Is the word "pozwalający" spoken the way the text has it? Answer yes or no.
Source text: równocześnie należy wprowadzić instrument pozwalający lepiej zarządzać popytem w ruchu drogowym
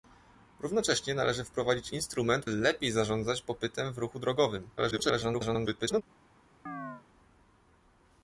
no